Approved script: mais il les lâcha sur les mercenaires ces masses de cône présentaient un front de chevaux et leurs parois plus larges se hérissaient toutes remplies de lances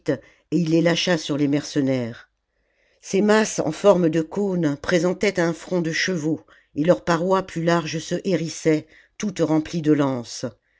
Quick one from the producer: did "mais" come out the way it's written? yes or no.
no